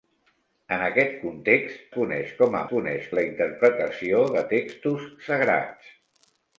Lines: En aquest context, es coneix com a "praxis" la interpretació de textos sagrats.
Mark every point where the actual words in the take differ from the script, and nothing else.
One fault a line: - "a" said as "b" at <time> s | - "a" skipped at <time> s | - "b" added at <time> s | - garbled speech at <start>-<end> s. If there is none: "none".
- "es" skipped at 1.8 s
- "praxis" said as "coneix" at 2.7 s